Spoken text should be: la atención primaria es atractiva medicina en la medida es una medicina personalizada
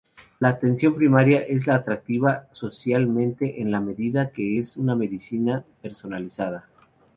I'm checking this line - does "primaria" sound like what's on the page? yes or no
yes